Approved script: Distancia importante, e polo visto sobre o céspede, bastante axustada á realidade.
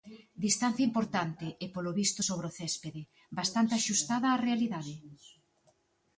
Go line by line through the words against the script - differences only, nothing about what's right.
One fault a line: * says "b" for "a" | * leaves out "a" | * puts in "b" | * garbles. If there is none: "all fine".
all fine